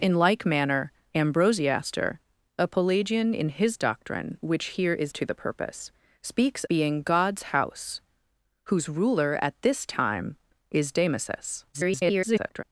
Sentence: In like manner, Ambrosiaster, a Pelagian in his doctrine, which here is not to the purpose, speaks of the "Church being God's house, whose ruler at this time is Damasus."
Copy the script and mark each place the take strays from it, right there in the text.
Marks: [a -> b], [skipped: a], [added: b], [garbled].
In like manner, Ambrosiaster, a Pelagian in his doctrine, which here is [skipped: not] to the purpose, speaks [skipped: of the "Church] being God's house, whose ruler at this time is Damasus." [garbled]